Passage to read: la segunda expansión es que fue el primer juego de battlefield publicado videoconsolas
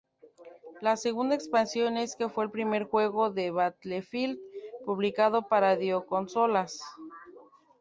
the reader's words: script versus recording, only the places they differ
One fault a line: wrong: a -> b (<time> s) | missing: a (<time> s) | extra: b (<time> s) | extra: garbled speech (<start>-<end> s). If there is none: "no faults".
extra: para (5.5 s)